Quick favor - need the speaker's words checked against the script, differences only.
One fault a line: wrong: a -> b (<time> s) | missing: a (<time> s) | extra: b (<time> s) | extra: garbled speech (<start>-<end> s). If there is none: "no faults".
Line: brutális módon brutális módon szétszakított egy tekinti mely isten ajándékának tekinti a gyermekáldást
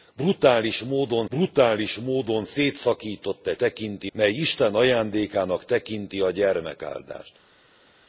no faults